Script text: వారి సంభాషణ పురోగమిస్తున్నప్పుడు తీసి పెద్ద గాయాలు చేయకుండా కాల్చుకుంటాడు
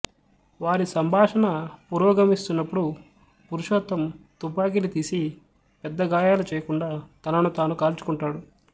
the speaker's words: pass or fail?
fail